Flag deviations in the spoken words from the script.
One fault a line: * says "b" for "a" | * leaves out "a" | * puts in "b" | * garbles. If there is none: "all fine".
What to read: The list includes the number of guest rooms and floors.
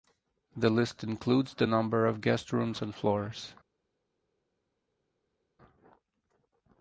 all fine